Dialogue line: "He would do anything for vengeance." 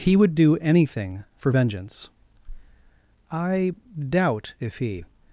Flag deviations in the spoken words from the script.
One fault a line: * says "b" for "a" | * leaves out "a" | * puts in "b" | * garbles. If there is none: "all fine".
* puts in "I doubt if he"